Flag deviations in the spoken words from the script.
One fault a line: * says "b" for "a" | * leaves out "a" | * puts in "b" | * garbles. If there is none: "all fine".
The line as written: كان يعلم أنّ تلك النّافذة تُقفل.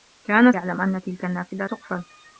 all fine